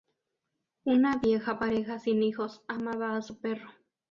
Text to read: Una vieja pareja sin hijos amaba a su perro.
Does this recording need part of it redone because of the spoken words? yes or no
no